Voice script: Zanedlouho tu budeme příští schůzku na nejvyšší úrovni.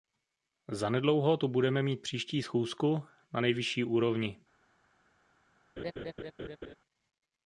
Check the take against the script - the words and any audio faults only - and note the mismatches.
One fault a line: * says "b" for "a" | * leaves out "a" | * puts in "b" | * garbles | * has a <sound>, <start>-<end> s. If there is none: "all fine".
* puts in "mít"
* has a laugh, 5.8-6.8 s